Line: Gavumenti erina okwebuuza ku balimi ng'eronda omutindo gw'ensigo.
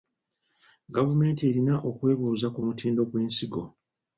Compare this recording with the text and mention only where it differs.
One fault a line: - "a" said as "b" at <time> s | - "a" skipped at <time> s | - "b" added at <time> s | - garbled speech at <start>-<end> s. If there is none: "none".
- "balimi ng'eronda" skipped at 2.6 s